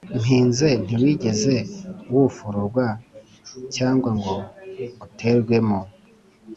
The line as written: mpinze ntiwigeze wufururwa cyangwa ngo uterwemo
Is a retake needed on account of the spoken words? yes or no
no